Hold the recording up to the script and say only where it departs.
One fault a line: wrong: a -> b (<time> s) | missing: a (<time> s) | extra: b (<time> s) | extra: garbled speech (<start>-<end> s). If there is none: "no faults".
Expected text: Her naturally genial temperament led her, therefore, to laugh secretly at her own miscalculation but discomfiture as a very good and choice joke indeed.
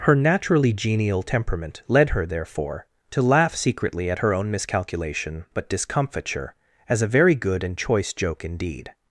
no faults